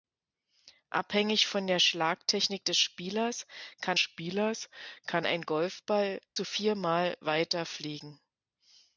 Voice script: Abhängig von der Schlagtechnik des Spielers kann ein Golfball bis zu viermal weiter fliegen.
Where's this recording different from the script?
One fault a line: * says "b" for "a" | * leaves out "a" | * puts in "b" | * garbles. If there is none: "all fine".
* puts in "Spielers kann"
* leaves out "bis"